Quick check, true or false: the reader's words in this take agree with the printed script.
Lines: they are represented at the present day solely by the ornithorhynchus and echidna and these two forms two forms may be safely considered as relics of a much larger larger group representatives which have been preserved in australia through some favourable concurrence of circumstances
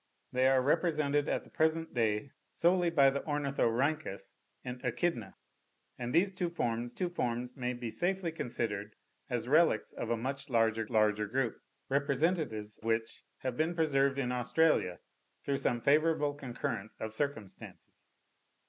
true